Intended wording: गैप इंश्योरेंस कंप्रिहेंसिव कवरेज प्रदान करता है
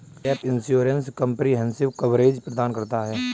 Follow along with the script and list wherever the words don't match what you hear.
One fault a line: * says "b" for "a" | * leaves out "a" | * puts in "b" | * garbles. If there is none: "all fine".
all fine